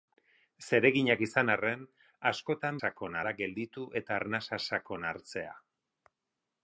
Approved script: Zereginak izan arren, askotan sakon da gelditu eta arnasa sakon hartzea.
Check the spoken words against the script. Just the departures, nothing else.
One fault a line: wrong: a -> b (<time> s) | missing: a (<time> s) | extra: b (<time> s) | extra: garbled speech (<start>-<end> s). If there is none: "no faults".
no faults